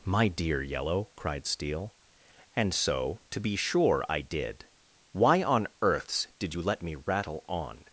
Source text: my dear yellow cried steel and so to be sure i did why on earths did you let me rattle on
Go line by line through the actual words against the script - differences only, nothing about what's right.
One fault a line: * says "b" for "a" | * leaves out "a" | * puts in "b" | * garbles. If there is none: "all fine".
all fine